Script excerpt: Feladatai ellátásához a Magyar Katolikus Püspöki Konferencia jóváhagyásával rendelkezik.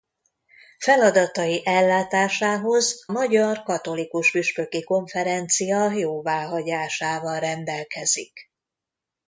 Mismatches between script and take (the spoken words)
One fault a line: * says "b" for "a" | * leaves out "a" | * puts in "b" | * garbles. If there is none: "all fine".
* leaves out "a"